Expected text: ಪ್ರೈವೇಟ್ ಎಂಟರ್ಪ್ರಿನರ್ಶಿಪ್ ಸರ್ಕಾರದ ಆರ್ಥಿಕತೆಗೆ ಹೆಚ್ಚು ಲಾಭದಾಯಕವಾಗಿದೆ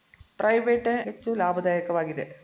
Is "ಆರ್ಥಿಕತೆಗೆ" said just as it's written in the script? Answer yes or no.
no